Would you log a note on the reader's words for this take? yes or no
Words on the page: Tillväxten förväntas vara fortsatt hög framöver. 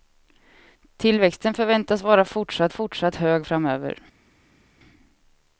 yes